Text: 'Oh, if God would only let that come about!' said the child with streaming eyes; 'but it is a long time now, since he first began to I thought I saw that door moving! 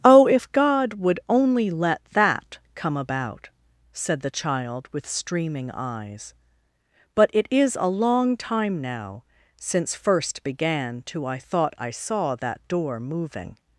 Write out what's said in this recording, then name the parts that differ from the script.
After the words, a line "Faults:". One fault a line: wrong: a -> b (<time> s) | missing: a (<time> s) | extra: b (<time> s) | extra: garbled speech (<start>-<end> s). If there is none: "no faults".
'Oh, if God would only let that come about!' said the child with streaming eyes; 'but it is a long time now, since first began to I thought I saw that door moving!
Faults:
missing: he (9.9 s)